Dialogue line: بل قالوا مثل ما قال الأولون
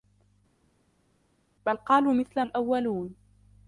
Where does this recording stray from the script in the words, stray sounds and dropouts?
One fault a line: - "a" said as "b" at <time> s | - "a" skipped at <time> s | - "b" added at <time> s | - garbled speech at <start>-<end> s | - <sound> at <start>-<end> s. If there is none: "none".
- "ما قال" skipped at 2.4 s